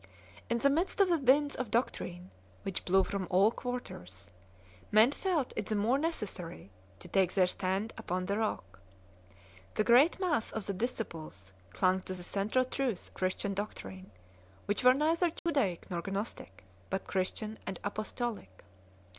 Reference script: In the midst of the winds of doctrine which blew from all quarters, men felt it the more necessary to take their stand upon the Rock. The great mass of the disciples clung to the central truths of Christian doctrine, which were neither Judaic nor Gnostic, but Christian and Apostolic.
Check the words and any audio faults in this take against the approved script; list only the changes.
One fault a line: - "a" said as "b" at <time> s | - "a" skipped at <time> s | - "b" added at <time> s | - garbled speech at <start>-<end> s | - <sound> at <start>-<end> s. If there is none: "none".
- "of" skipped at 13.1 s
- dropout at 15.4-15.5 s